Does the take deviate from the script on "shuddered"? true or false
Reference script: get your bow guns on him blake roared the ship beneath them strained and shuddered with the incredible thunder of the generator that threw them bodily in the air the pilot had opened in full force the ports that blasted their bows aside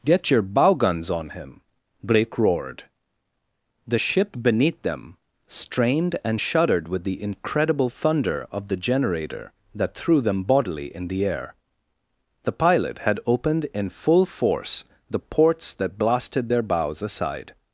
false